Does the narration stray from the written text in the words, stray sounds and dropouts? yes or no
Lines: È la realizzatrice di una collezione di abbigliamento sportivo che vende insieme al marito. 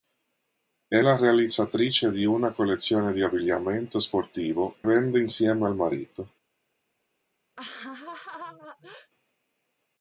yes